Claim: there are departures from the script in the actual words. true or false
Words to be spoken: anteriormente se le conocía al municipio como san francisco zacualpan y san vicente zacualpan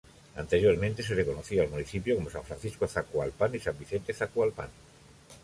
false